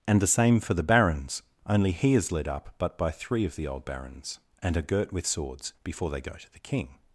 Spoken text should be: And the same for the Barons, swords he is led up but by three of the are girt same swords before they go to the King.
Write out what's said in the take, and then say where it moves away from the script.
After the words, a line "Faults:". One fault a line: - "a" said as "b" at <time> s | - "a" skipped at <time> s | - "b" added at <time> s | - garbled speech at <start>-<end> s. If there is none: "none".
And the same for the Barons, only he is led up but by three of the old Barons, and are girt with swords before they go to the King.
Faults:
- "swords" said as "only" at 1.7 s
- "old Barons and" added at 3.7 s
- "same" said as "with" at 5.1 s